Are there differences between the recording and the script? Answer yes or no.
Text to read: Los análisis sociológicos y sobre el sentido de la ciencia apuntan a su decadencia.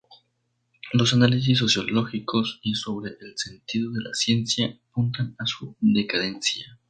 no